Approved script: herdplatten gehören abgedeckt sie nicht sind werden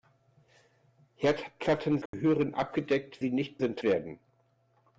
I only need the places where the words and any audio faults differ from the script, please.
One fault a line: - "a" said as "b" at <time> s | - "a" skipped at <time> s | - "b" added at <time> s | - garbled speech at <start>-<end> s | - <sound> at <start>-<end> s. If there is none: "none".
- dropout at 2.1-2.1 s